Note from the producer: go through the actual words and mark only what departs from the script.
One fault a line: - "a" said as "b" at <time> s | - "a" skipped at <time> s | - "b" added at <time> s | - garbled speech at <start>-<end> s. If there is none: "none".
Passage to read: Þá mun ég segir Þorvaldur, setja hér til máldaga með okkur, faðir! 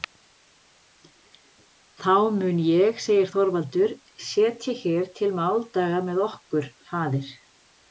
none